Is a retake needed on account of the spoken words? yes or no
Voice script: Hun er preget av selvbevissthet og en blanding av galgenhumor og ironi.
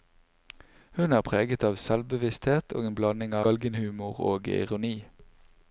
yes